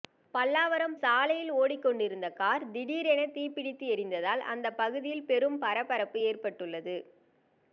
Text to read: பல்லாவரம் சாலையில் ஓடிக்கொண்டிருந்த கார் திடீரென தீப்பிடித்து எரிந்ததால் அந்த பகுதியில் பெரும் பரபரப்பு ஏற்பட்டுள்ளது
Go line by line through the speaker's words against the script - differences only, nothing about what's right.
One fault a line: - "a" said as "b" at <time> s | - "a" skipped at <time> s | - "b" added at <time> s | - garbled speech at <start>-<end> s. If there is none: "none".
none